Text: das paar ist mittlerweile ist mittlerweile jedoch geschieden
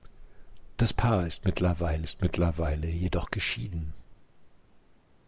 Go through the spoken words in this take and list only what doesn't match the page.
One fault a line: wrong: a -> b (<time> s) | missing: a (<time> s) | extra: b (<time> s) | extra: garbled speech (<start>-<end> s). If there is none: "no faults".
no faults